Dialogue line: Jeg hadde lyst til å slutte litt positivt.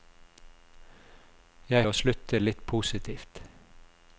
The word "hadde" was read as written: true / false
false